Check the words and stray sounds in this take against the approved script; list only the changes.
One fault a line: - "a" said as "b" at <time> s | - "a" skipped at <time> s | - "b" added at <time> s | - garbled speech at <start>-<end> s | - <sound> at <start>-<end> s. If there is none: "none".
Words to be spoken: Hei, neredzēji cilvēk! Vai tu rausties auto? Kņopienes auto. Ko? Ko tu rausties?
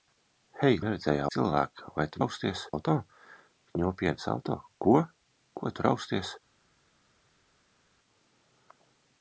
none